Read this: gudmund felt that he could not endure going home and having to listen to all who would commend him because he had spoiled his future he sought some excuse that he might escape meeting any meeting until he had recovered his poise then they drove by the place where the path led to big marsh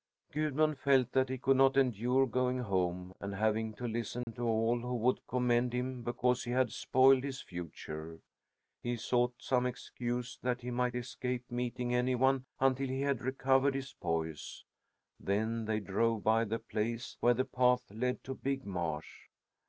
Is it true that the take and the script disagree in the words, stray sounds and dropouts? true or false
true